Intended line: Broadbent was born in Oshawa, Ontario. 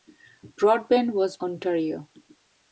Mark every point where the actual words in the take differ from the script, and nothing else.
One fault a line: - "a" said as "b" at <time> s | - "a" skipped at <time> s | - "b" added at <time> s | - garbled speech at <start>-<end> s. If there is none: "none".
- "born in Oshawa" skipped at 1.4 s